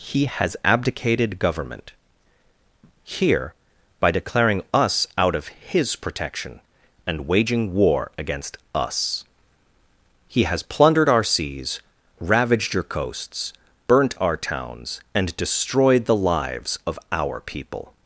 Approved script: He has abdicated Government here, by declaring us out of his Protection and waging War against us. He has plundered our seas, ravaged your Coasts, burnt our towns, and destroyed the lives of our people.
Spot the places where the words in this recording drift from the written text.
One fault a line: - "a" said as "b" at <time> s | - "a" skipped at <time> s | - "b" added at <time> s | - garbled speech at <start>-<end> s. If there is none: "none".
none